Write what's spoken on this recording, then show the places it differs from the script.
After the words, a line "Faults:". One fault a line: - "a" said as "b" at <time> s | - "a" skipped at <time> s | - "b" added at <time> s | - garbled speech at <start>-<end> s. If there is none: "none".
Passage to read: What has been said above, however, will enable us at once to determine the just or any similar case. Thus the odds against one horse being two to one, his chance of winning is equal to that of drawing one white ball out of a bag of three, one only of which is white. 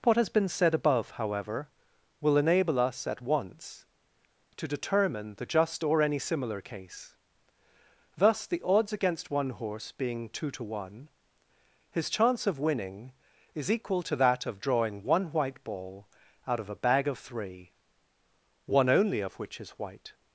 What has been said above, however, will enable us at once to determine the just or any similar case. Thus the odds against one horse being two to one, his chance of winning is equal to that of drawing one white ball out of a bag of three, one only of which is white.
Faults:
none